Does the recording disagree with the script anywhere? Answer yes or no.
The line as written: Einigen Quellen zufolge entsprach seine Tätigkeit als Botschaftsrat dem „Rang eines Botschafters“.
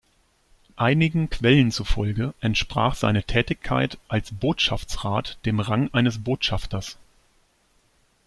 no